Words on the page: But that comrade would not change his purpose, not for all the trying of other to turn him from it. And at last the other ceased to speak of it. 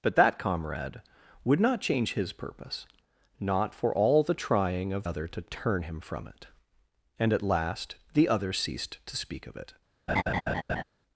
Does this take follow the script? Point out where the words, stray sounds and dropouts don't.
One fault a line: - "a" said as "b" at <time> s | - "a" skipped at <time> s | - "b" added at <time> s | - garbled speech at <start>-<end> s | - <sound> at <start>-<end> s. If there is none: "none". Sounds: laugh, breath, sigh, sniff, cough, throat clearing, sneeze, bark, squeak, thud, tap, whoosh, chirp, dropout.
- laugh at 10.1-10.8 s